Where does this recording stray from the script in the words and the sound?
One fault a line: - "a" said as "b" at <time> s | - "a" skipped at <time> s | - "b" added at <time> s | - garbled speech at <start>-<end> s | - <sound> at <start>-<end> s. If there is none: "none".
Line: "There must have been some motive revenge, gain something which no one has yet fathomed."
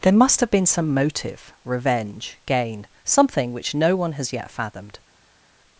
none